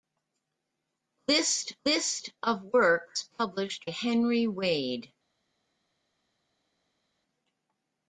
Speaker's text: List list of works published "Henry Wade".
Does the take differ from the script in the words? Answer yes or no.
no